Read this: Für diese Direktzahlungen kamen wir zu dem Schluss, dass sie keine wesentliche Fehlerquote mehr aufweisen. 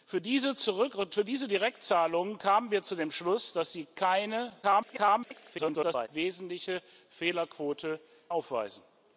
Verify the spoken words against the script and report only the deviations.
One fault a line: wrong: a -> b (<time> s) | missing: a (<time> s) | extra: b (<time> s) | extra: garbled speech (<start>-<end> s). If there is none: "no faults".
extra: garbled speech (4.6-6.1 s)
missing: mehr (8.0 s)